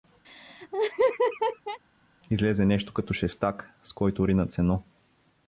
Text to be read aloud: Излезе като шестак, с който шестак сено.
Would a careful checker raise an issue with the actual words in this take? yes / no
yes